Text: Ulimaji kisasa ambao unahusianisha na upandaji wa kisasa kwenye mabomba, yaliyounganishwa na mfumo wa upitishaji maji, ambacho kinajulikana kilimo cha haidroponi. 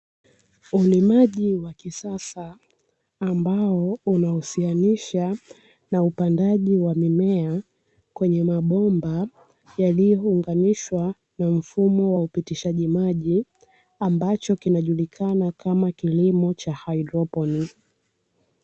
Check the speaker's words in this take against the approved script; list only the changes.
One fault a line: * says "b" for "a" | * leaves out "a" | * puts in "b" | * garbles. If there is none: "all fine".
* puts in "wa"
* says "mimea" for "kisasa"
* puts in "kama"